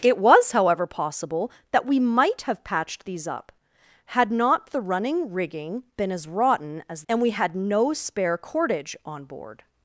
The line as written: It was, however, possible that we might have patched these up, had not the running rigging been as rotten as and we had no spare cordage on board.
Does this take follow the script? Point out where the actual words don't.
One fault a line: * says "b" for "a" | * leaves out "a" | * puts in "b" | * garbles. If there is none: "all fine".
all fine